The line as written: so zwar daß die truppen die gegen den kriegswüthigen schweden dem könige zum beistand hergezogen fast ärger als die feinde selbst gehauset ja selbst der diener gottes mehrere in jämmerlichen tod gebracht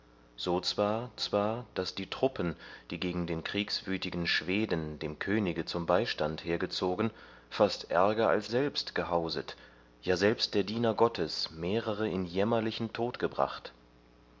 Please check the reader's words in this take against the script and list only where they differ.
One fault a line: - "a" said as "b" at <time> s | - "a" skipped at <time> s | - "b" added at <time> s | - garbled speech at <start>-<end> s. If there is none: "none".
- "zwar" added at 1.2 s
- "die feinde" skipped at 8.5 s